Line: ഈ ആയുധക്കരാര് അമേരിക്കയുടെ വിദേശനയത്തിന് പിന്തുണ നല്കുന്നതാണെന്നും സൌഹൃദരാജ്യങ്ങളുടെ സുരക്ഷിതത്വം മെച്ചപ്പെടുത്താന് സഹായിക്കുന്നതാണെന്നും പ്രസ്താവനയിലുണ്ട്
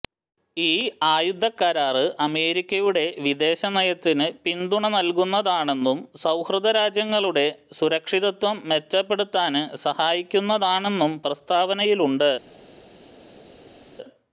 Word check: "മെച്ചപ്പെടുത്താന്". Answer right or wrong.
right